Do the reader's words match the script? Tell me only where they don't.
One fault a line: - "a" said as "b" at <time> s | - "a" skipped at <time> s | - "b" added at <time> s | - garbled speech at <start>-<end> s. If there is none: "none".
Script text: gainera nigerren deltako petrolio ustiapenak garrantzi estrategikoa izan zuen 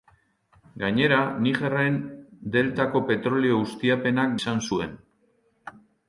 - "garrantzi estrategikoa" skipped at 4.4 s